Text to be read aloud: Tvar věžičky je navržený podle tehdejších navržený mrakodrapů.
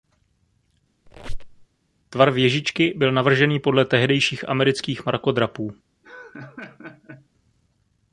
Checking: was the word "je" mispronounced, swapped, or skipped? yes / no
yes